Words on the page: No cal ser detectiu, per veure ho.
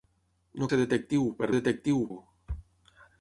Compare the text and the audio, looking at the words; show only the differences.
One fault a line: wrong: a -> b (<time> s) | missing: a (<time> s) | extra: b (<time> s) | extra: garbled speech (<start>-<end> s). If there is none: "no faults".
missing: cal (0.7 s)
wrong: veure -> detectiu (1.6 s)